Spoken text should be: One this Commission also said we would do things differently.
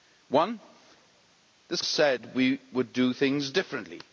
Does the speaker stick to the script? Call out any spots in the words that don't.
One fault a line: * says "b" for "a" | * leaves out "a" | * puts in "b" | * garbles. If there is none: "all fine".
* leaves out "Commission also"